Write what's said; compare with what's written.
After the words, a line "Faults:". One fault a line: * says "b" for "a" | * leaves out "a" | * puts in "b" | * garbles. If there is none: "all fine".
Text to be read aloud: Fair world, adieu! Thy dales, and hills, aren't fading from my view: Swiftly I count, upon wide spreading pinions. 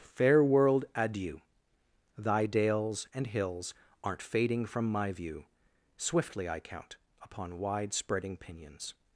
Fair world, adieu! Thy dales, and hills, aren't fading from my view: Swiftly I count, upon wide spreading pinions.
Faults:
all fine